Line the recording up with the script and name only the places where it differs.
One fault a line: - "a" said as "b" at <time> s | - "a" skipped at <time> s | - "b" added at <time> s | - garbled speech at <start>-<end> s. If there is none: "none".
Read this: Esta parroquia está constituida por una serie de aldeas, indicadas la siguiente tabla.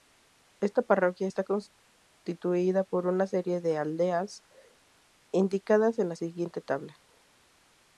- "en" added at 6.0 s